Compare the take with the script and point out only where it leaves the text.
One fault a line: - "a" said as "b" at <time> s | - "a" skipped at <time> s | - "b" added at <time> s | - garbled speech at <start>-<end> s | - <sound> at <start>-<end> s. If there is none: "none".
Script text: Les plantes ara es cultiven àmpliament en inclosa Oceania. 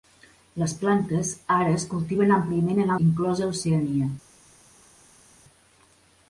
none